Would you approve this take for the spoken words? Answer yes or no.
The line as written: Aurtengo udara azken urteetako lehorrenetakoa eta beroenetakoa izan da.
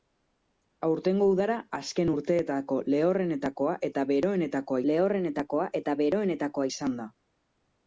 no